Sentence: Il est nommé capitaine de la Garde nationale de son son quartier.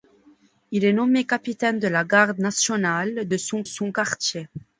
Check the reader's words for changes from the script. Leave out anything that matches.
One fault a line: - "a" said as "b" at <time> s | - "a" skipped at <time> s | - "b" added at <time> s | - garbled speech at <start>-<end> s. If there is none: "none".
none